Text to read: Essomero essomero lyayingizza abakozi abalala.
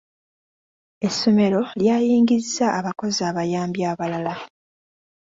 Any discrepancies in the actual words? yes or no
yes